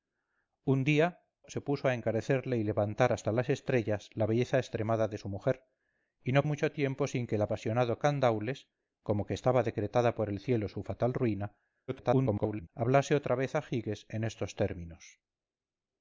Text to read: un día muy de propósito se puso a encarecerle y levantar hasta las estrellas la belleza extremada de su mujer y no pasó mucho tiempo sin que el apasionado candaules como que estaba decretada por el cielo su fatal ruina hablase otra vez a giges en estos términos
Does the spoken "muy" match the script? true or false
false